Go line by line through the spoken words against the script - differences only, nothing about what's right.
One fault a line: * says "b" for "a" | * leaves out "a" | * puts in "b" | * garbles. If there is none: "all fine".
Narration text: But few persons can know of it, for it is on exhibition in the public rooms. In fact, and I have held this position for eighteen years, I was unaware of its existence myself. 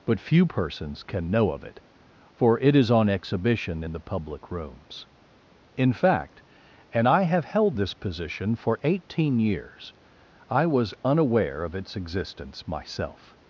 all fine